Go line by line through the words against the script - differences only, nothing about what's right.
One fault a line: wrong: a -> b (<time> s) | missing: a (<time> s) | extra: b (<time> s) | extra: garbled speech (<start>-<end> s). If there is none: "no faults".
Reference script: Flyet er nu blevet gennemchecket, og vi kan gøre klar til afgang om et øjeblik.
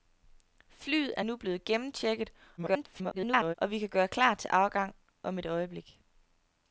extra: garbled speech (2.6-3.5 s)